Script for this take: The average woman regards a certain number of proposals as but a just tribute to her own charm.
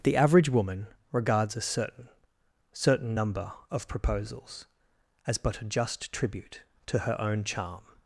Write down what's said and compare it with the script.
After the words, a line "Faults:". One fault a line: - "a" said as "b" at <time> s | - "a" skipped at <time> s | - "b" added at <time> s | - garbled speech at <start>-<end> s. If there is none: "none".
The average woman regards a certain certain number of proposals as but a just tribute to her own charm.
Faults:
- "certain" added at 2.7 s